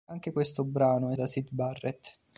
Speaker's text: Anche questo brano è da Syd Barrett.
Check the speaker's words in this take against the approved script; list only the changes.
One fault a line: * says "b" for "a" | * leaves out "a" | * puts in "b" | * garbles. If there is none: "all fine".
all fine